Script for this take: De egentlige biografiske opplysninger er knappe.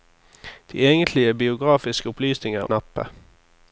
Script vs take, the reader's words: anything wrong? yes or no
no